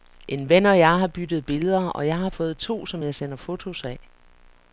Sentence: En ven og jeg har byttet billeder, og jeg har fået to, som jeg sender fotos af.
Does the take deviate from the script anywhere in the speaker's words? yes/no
no